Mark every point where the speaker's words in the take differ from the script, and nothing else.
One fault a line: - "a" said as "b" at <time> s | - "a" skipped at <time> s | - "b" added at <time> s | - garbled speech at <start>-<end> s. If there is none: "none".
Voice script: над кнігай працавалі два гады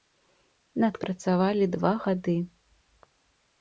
- "кнігай" skipped at 1.0 s